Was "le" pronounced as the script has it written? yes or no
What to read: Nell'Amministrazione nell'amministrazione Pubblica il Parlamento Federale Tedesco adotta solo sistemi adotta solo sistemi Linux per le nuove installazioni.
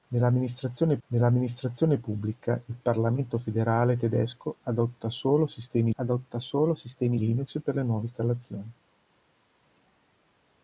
yes